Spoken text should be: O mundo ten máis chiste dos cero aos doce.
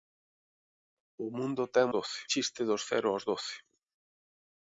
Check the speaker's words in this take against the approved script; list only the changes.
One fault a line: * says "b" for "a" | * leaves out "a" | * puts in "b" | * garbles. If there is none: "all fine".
* says "doce" for "máis"